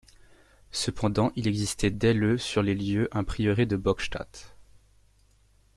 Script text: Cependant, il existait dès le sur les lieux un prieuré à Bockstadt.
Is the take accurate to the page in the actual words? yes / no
no